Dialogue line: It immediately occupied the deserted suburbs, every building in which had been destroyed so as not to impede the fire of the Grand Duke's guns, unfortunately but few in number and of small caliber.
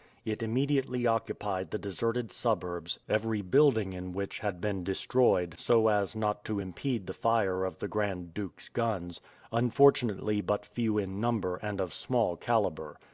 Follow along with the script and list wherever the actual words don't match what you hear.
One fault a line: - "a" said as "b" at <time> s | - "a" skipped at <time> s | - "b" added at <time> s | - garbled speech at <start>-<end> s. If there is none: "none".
none